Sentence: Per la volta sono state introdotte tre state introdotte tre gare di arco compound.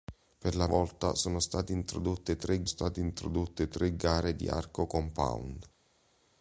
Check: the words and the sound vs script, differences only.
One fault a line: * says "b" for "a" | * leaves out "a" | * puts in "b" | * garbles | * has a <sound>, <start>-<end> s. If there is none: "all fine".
all fine